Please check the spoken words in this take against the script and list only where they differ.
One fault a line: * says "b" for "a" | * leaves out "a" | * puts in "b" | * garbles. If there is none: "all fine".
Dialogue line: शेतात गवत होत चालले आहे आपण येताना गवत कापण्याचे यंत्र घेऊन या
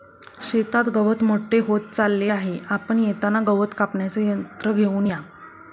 * puts in "मोठे"